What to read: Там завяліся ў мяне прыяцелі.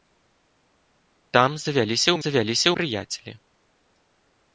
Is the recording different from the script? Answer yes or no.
yes